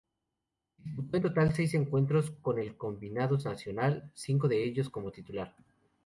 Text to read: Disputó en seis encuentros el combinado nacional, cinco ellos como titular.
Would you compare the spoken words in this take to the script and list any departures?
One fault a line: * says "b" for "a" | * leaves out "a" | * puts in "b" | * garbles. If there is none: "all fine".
* puts in "total"
* puts in "con"
* puts in "de"